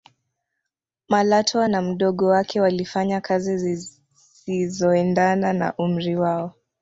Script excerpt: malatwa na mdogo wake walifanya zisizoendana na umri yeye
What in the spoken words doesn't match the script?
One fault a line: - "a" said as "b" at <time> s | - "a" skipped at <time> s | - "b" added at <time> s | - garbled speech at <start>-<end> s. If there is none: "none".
- "kazi" added at 3.2 s
- "yeye" said as "wao" at 6.2 s